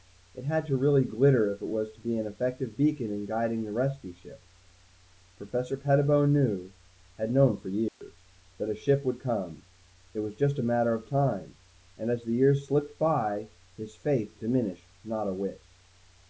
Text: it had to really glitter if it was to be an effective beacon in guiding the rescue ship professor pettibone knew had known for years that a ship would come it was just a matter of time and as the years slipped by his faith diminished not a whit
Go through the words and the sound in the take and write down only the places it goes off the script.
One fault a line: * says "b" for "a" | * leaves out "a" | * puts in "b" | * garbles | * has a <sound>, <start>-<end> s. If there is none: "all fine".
* has a dropout, 7.9-8.0 s